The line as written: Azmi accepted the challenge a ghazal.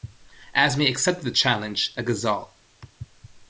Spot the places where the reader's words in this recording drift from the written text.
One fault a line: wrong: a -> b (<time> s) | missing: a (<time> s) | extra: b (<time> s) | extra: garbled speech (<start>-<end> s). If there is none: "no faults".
no faults